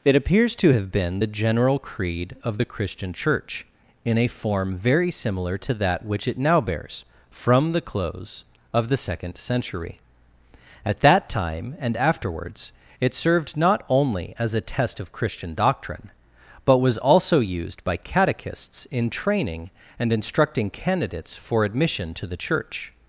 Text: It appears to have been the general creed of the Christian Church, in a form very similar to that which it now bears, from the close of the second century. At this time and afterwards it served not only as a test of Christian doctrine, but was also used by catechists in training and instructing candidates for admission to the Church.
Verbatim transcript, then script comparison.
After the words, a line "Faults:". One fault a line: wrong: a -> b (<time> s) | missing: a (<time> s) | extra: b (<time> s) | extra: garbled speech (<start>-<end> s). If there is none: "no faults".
It appears to have been the general creed of the Christian Church, in a form very similar to that which it now bears, from the close of the second century. At that time and afterwards it served not only as a test of Christian doctrine, but was also used by catechists in training and instructing candidates for admission to the Church.
Faults:
wrong: this -> that (11.0 s)